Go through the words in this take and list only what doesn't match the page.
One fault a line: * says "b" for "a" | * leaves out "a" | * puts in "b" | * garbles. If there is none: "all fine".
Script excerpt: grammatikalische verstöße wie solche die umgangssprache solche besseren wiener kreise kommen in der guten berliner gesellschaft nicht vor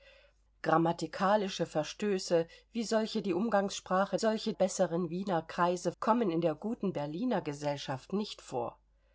all fine